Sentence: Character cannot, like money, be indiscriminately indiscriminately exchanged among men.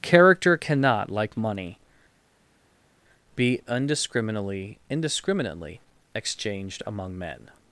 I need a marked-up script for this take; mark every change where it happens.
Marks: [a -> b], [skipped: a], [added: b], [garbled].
Character cannot, like money, be indiscriminately indiscriminately exchanged among men.